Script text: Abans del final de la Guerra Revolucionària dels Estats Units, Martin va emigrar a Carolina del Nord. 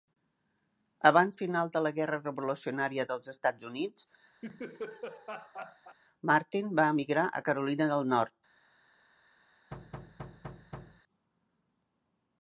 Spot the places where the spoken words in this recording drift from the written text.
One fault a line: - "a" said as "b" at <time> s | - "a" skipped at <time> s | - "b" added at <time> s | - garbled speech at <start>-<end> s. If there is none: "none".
- "del" skipped at 1.4 s